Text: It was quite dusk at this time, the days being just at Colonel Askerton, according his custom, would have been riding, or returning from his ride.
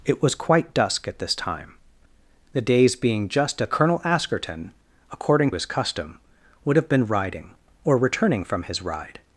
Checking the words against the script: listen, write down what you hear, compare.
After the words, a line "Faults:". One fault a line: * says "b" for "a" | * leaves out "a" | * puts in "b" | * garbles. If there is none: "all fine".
It was quite dusk at this time, the days being just at Colonel Askerton, according his custom, would have been riding, or returning from his ride.
Faults:
all fine